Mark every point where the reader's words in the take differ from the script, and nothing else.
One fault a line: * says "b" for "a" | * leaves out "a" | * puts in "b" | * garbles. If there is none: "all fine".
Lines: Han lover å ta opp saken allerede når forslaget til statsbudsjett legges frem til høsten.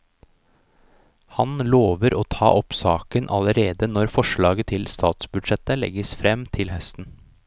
all fine